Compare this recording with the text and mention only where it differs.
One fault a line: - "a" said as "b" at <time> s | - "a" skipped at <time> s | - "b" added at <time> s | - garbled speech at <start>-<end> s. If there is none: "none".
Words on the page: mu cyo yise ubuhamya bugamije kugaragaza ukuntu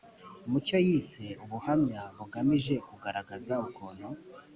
none